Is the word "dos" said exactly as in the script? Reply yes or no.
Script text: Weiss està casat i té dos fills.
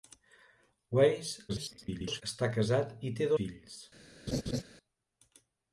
no